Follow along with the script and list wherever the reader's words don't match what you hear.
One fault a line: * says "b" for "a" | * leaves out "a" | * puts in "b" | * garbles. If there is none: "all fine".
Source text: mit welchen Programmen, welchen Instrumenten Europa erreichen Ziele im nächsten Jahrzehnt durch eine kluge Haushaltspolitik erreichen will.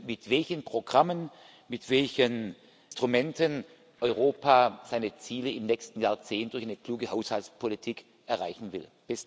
* puts in "mit"
* says "seine" for "erreichen"